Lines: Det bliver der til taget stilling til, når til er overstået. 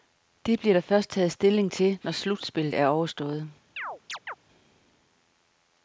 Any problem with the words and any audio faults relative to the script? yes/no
yes